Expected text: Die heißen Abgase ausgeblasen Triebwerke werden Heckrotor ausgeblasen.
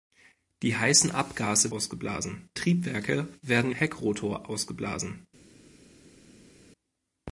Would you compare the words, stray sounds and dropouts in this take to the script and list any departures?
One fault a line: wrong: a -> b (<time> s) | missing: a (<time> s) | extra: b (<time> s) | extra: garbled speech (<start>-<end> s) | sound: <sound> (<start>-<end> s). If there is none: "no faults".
no faults